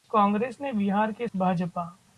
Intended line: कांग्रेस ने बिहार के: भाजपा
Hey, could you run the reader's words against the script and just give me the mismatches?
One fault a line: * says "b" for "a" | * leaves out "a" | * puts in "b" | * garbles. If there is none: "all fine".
all fine